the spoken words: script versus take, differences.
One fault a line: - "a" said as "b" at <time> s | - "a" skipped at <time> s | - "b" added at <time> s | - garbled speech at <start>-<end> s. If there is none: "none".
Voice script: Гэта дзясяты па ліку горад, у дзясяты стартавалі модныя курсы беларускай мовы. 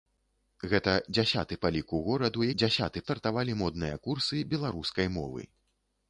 none